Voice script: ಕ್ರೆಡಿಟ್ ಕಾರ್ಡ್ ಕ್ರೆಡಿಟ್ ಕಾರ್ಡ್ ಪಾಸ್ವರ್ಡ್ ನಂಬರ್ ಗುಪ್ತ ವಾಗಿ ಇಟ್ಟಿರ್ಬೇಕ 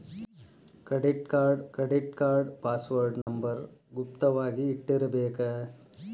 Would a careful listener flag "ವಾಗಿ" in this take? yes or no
no